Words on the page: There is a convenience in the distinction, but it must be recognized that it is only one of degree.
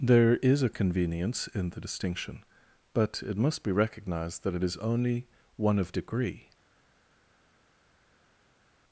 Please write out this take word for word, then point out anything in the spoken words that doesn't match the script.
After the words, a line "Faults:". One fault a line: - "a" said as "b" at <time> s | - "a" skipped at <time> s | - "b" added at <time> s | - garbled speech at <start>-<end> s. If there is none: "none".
There is a convenience in the distinction, but it must be recognized that it is only one of degree.
Faults:
none